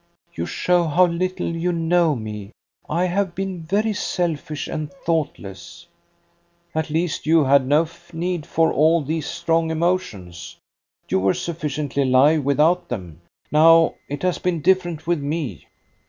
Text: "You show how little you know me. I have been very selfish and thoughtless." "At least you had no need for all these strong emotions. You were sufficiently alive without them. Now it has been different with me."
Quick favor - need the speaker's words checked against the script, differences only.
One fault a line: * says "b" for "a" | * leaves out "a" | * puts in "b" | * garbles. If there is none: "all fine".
all fine